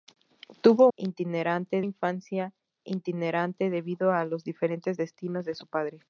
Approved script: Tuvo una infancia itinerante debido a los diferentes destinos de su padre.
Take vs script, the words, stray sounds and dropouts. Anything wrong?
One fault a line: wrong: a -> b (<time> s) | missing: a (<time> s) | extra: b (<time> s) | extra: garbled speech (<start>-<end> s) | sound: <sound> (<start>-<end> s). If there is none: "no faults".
wrong: una -> itinerante (1.0 s)